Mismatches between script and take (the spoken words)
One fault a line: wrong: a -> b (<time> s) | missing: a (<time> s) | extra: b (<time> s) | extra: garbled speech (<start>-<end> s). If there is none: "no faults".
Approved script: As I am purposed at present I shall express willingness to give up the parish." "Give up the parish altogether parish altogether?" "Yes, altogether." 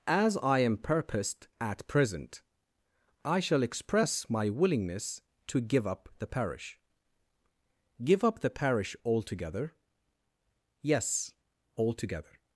extra: my (4.3 s)
missing: parish altogether (9.8 s)